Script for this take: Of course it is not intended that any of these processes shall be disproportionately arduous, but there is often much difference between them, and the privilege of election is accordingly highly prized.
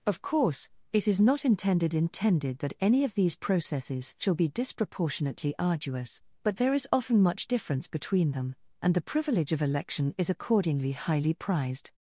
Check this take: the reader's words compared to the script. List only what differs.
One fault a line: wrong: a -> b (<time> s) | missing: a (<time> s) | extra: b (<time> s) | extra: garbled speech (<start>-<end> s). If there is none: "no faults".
extra: intended (1.9 s)